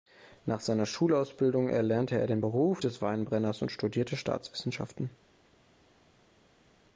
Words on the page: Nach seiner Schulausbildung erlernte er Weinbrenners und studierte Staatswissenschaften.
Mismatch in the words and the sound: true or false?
true